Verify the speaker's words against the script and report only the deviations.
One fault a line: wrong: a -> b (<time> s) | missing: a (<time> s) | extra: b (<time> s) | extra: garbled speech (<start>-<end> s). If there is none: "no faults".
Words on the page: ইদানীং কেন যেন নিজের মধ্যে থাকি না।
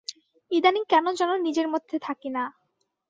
no faults